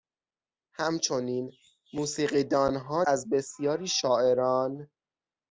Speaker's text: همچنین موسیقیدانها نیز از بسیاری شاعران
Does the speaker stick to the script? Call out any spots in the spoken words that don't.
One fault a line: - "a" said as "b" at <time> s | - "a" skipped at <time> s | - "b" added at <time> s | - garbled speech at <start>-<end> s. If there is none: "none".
- "نیز" skipped at 3.0 s